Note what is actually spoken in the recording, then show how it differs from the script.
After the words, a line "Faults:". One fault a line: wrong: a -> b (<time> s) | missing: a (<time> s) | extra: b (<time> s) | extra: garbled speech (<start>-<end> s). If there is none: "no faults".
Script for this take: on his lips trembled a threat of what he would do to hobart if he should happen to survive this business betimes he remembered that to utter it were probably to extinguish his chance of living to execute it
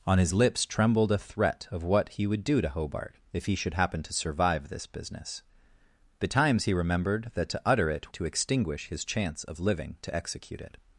on his lips trembled a threat of what he would do to hobart if he should happen to survive this business betimes he remembered that to utter it to extinguish his chance of living to execute it
Faults:
missing: were probably (8.1 s)